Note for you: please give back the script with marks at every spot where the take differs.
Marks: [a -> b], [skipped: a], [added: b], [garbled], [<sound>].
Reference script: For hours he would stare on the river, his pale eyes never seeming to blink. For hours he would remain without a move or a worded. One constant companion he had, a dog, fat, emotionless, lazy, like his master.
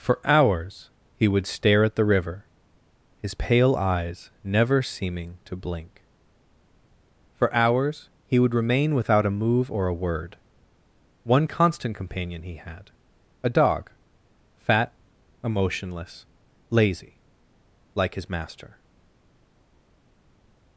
For hours he would stare [on -> at] the river, his pale eyes never seeming to blink. For hours he would remain without a move or a [worded. -> word] One constant companion he had, a dog, fat, emotionless, lazy, like his master.